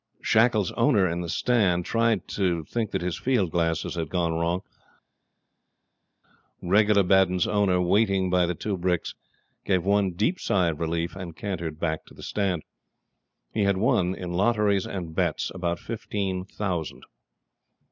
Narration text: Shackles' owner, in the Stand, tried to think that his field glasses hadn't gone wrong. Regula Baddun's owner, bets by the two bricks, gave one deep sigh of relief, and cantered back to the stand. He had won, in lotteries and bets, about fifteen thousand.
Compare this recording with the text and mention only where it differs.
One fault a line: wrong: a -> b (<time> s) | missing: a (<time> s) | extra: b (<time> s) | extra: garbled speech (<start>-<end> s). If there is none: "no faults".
wrong: hadn't -> had (3.9 s)
wrong: bets -> waiting (7.8 s)